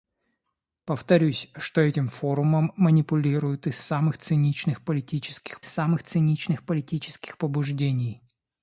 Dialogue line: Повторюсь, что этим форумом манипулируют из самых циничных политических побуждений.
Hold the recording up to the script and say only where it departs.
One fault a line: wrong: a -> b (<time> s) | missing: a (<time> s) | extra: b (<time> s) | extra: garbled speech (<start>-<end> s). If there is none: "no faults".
extra: самых циничных политических (5.6 s)